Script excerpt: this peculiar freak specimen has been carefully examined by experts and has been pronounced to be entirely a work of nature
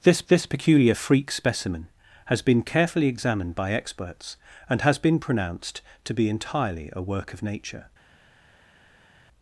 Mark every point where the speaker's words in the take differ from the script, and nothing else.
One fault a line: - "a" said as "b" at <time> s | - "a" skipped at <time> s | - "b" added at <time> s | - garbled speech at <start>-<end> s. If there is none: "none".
- "this" added at 0.3 s